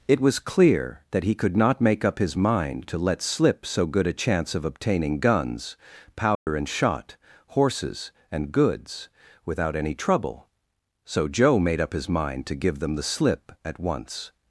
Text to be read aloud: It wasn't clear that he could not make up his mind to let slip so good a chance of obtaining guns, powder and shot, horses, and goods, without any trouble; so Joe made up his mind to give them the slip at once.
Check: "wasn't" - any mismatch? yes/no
yes